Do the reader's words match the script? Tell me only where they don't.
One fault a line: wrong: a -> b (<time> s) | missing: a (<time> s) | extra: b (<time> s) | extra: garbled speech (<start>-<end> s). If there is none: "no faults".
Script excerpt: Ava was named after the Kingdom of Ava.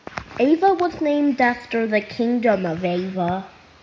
no faults